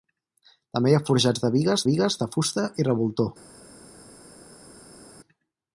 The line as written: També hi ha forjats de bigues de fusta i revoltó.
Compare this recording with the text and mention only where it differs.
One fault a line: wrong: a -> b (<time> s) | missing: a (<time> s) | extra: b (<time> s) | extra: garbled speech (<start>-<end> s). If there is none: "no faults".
extra: bigues (1.9 s)